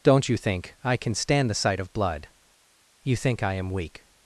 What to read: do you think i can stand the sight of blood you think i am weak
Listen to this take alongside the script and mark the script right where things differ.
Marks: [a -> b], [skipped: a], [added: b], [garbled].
[do -> don't] you think i can stand the sight of blood you think i am weak